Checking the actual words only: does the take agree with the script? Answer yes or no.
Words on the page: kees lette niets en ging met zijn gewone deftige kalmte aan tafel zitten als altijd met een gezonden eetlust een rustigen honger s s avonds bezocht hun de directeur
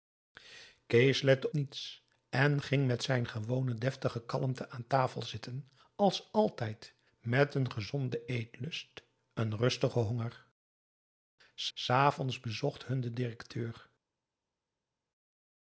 yes